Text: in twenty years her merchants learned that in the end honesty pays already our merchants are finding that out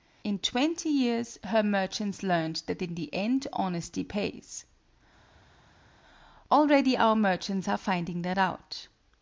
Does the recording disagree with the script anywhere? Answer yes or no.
no